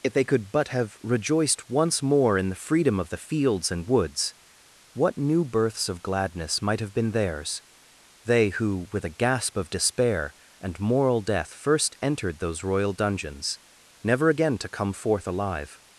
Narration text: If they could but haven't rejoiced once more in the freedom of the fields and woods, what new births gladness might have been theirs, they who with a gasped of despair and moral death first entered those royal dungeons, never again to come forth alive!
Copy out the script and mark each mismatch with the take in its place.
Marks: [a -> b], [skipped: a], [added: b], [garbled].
If they could but [haven't -> have] rejoiced once more in the freedom of the fields and woods, what new births [added: of] gladness might have been theirs, they who with a [gasped -> gasp] of despair and moral death first entered those royal dungeons, never again to come forth alive!